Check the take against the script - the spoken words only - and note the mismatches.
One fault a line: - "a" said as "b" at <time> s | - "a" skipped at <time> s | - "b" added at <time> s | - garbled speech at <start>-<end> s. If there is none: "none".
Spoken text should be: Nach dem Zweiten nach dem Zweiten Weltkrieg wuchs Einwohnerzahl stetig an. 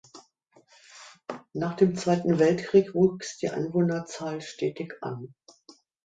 - "nach dem Zweiten" skipped at 2.4 s
- "die" added at 3.4 s